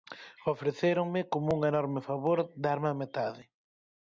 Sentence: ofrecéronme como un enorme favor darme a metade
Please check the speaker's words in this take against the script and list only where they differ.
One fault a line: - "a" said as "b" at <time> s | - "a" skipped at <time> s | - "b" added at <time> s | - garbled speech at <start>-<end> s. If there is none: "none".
none